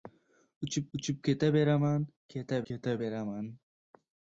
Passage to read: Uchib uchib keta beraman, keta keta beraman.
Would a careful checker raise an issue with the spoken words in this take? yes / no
no